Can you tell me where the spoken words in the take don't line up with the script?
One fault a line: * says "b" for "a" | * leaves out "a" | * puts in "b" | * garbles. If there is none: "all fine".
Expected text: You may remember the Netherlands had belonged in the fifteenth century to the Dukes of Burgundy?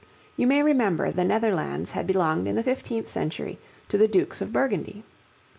all fine